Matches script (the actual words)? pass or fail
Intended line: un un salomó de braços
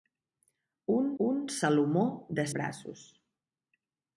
pass